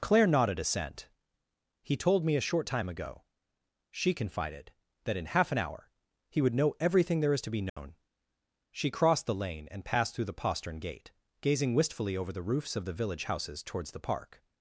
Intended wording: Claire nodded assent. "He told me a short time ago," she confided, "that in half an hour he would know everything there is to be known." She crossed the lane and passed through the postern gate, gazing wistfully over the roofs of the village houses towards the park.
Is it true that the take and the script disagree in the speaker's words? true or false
false